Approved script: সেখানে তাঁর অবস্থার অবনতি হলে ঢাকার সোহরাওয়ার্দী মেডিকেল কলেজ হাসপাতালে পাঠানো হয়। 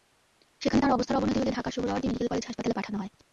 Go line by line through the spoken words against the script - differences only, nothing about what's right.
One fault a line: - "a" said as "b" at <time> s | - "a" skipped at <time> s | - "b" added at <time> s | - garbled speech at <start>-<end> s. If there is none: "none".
none